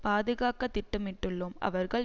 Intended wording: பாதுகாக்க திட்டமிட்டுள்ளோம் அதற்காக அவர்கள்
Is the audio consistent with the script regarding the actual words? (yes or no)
no